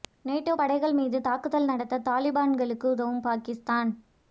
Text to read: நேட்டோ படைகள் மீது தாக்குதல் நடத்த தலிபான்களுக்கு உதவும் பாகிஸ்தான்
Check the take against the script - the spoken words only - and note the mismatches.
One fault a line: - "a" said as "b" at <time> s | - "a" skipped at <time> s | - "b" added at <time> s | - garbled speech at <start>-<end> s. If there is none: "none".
none